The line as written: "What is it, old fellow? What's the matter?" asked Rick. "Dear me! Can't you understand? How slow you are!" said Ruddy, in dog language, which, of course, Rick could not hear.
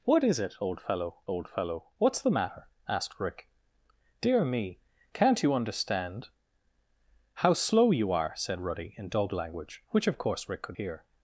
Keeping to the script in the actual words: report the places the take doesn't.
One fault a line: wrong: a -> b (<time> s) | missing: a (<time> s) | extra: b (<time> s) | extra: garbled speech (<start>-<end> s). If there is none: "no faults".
extra: old fellow (1.3 s)
missing: not (10.8 s)